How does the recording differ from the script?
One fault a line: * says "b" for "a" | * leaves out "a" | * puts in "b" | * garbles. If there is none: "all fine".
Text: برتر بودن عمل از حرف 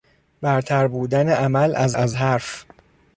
* puts in "از"